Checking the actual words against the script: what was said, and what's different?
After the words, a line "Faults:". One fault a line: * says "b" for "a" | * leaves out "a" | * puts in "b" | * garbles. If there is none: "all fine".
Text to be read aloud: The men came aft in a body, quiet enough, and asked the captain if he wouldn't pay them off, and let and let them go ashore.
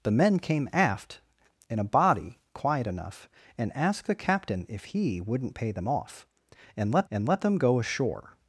The men came aft in a body, quiet enough, and asked the captain if he wouldn't pay them off, and let and let them go ashore.
Faults:
all fine